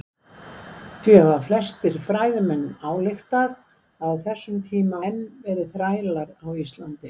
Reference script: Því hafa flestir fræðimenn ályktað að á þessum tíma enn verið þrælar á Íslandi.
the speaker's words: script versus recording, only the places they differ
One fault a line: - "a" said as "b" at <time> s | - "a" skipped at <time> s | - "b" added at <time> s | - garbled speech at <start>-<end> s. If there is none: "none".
none